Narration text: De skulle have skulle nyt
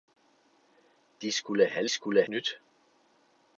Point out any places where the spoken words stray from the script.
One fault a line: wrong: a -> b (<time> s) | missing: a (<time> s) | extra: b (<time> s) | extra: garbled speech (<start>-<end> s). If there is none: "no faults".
no faults